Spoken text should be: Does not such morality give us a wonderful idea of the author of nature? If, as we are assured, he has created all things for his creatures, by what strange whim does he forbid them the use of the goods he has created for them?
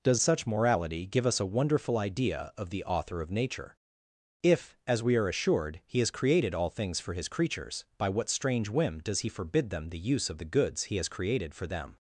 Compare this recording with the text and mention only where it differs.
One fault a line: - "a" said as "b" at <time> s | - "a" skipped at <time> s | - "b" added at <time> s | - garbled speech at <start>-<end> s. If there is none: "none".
- "not" skipped at 0.2 s